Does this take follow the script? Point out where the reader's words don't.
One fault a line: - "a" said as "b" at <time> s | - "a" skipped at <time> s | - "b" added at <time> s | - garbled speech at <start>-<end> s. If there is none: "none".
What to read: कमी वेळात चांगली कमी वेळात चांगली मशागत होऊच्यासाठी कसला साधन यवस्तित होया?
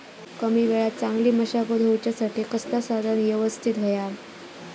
- "कमी वेळात चांगली" skipped at 1.3 s